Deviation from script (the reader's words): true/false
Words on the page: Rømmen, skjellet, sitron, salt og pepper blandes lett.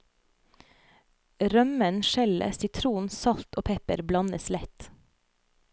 false